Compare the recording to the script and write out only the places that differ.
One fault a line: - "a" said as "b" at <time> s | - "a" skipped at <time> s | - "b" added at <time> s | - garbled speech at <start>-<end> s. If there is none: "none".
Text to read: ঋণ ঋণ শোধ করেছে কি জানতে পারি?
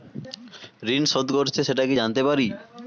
- "ঋণ" skipped at 1.0 s
- "সেটা" added at 1.6 s